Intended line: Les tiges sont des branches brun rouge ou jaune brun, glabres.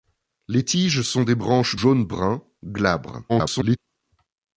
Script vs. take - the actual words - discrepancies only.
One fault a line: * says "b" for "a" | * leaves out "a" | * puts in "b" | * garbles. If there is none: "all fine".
* leaves out "brun rouge ou"
* garbles